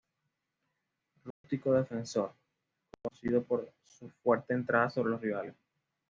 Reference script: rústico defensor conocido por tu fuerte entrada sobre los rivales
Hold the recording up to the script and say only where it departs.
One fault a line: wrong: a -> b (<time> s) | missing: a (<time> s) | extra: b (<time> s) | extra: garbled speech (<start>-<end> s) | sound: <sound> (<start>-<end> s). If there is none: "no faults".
sound: dropout (1.3-1.4 s)
wrong: tu -> su (3.8 s)